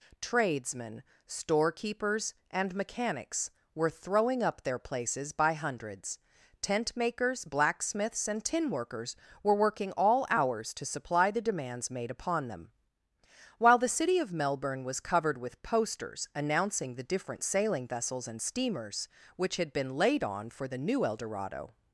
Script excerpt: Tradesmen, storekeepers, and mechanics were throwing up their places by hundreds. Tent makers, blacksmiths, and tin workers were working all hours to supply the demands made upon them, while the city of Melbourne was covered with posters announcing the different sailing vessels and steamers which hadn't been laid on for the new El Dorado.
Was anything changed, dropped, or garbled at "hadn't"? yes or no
yes